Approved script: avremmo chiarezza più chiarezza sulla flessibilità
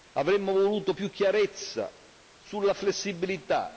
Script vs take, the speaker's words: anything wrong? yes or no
yes